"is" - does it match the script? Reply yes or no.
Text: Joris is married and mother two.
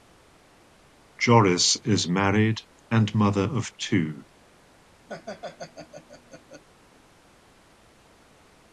yes